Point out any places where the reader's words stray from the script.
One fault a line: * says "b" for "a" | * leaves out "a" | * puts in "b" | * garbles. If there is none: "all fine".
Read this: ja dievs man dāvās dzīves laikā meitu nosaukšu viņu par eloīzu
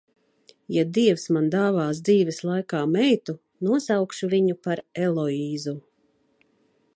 all fine